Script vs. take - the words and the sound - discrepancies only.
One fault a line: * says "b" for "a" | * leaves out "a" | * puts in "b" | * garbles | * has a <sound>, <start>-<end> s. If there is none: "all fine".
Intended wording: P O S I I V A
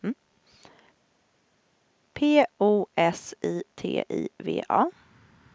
* puts in "T"